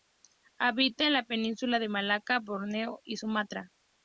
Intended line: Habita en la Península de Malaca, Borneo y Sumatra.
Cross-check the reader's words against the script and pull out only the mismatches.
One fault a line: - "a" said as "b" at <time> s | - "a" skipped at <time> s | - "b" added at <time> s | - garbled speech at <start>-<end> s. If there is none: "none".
none